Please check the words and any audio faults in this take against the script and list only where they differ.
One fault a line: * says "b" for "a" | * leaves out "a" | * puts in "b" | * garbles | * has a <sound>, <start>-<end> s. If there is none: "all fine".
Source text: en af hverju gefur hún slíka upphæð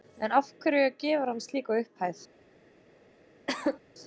* says "hann" for "hún"
* has a cough, 3.5-3.8 s